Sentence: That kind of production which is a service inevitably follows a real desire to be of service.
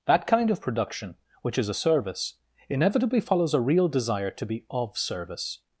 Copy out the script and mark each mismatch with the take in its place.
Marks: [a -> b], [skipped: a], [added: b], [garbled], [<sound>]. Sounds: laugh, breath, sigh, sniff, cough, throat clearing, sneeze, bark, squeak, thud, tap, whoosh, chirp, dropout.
That kind of production which is a service inevitably follows a real desire to be of service.